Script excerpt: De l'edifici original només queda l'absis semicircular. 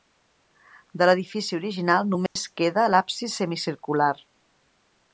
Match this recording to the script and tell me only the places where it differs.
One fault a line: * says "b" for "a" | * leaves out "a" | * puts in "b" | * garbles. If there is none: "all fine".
all fine